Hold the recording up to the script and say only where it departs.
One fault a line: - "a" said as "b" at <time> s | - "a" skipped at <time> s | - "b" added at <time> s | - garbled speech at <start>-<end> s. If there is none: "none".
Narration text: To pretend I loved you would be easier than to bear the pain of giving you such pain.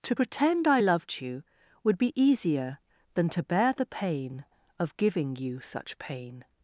none